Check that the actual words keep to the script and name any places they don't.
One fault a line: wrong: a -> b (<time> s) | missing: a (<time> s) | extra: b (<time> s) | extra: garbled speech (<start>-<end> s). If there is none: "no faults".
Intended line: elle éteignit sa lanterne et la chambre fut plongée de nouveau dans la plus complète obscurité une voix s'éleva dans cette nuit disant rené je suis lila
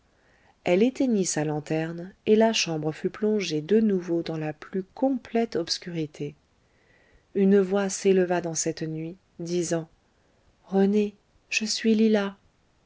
no faults